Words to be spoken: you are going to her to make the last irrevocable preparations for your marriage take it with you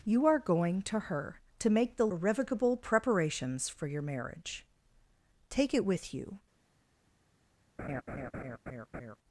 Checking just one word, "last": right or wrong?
wrong